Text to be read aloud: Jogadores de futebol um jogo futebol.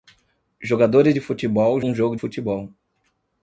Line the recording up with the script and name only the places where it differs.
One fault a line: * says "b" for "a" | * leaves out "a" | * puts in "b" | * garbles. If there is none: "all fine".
all fine